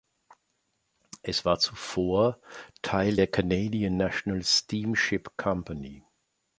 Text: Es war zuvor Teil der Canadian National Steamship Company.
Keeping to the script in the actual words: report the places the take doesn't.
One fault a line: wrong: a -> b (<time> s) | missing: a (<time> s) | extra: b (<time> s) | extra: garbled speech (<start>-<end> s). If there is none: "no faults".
no faults